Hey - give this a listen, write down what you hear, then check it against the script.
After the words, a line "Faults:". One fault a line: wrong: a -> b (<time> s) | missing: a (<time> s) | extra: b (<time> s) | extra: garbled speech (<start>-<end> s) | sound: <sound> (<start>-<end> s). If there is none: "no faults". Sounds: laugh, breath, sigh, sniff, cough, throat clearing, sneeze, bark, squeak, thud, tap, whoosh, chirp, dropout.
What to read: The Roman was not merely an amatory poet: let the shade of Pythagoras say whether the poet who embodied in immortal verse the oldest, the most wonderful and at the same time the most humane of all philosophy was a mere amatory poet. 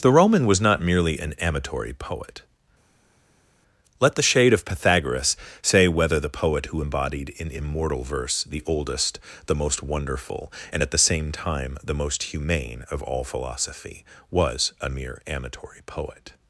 The Roman was not merely an amatory poet: let the shade of Pythagoras say whether the poet who embodied in immortal verse the oldest, the most wonderful and at the same time the most humane of all philosophy was a mere amatory poet.
Faults:
no faults